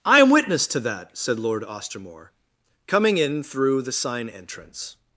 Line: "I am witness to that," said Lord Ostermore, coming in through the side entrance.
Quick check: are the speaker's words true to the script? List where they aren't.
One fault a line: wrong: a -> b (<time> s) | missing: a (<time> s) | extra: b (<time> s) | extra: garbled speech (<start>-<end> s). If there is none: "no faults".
wrong: side -> sign (3.9 s)